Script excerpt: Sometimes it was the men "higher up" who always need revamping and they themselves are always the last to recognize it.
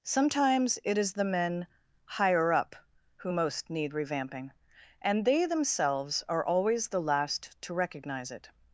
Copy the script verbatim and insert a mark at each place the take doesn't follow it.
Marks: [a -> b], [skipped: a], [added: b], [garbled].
Sometimes it [was -> is] the men "higher up" who [always -> most] need revamping and they themselves are always the last to recognize it.